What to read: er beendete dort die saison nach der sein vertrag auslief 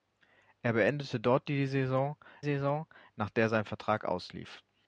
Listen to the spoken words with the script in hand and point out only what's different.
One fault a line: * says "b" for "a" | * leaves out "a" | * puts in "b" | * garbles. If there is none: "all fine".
* puts in "saison"